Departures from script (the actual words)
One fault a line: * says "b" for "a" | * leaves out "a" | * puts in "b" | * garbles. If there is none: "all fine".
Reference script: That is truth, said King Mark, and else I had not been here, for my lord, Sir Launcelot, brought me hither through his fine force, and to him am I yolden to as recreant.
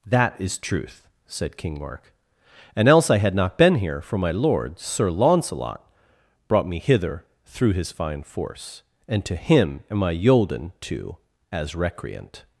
all fine